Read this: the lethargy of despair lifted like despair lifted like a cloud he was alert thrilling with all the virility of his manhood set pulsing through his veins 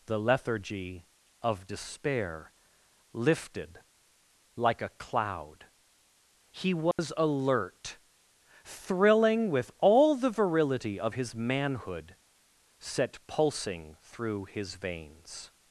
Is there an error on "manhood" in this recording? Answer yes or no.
no